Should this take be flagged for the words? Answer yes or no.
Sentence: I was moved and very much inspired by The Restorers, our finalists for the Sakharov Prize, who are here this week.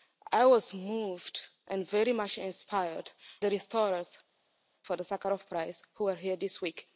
yes